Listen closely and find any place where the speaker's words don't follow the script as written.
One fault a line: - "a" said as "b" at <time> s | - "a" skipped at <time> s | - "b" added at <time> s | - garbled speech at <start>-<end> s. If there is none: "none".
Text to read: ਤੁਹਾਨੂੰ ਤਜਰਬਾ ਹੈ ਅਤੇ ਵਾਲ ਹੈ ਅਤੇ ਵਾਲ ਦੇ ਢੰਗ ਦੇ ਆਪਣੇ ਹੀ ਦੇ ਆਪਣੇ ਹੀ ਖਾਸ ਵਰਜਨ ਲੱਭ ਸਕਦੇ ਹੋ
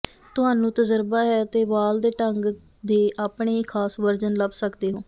- "ਹੈ ਅਤੇ ਵਾਲ" skipped at 2.0 s
- "ਦੇ ਆਪਣੇ ਹੀ" skipped at 3.6 s